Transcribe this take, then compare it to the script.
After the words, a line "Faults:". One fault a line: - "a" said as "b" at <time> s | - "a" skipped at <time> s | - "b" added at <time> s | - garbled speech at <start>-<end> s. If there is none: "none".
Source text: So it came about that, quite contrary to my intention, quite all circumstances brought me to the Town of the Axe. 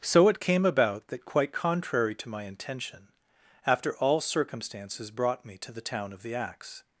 So it came about that, quite contrary to my intention, after all circumstances brought me to the Town of the Axe.
Faults:
- "quite" said as "after" at 3.7 s